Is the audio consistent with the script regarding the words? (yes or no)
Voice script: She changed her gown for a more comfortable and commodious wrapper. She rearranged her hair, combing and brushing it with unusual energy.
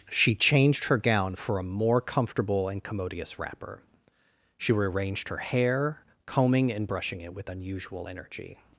yes